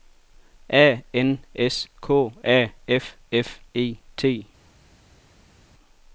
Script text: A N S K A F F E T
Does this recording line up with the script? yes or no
yes